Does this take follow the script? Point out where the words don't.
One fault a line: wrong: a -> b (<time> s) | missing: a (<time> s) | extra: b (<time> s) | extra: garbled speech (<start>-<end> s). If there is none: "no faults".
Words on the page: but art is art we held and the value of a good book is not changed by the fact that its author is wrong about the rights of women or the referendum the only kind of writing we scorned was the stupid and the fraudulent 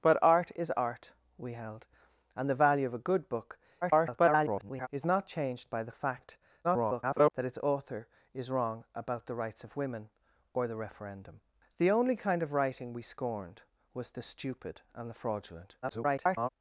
extra: garbled speech (3.8-4.9 s)
extra: garbled speech (6.6-7.3 s)
extra: garbled speech (15.8-16.5 s)